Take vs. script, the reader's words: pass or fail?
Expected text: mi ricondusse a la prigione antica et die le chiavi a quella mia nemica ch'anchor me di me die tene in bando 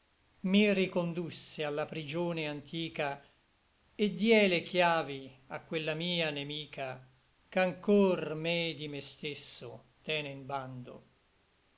fail